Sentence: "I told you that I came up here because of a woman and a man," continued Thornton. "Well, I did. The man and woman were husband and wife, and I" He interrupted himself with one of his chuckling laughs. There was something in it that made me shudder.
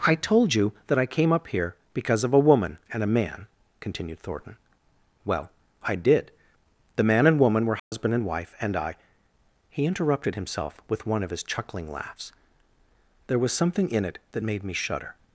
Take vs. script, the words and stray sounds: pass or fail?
fail